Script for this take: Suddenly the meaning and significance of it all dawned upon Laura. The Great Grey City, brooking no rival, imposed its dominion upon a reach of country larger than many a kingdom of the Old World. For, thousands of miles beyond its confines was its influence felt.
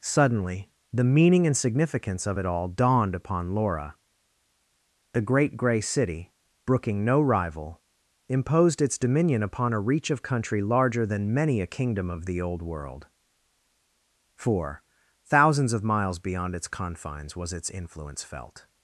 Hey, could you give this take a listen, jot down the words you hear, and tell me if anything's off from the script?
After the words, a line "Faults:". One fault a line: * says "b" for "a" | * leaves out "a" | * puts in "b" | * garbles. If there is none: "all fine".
Suddenly the meaning and significance of it all dawned upon Laura. The Great Grey City, brooking no rival, imposed its dominion upon a reach of country larger than many a kingdom of the Old World. For, thousands of miles beyond its confines was its influence felt.
Faults:
all fine